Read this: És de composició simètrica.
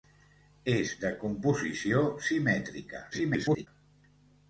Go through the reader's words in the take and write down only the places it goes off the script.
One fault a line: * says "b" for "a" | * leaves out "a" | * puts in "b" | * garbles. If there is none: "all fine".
* garbles